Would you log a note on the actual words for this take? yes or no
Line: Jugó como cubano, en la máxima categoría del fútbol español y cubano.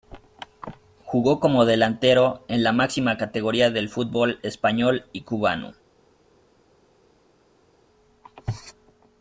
yes